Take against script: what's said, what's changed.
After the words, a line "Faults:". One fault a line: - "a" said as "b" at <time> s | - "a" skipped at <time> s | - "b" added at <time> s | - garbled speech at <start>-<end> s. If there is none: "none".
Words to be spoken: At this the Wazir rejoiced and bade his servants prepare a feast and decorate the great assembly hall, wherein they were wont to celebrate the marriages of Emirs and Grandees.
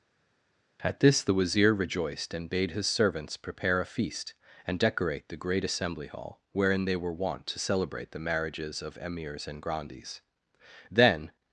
At this the Wazir rejoiced and bade his servants prepare a feast and decorate the great assembly hall, wherein they were wont to celebrate the marriages of Emirs and Grandees. Then
Faults:
- "Then" added at 10.9 s